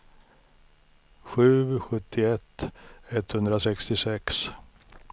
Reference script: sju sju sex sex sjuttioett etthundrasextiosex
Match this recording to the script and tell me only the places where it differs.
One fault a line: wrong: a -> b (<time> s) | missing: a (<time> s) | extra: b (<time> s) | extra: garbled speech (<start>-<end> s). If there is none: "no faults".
missing: sju sex sex (1.5 s)